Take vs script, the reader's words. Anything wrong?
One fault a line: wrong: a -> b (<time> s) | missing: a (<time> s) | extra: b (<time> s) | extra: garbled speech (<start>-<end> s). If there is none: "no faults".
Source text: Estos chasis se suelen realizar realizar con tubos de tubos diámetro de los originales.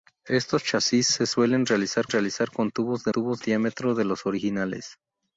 no faults